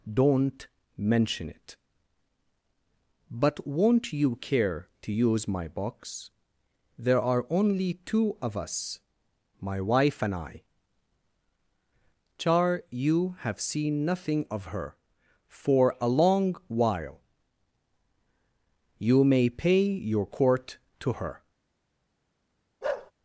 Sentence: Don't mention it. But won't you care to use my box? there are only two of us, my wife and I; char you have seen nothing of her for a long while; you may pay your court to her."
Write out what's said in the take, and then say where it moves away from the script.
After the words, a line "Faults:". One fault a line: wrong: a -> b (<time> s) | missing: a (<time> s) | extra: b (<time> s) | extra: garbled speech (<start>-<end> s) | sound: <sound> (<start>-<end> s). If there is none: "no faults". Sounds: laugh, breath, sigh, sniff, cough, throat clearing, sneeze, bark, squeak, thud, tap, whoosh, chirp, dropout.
Don't mention it. But won't you care to use my box? there are only two of us, my wife and I; char you have seen nothing of her for a long while; you may pay your court to her."
Faults:
sound: bark (22.8-23.1 s)